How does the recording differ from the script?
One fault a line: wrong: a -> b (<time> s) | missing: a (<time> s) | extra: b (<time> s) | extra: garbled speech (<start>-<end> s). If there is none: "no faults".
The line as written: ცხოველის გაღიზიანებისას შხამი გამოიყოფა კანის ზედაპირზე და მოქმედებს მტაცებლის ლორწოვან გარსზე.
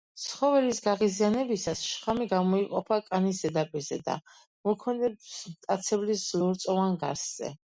no faults